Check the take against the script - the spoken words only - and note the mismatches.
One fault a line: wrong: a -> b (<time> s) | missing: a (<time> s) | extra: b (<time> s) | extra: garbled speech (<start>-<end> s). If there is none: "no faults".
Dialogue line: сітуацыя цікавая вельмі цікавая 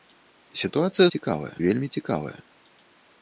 no faults